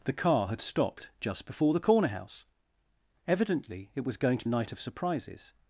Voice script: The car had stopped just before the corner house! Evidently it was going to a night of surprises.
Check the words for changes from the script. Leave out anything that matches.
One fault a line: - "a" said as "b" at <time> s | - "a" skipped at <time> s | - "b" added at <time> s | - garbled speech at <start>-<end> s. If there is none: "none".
none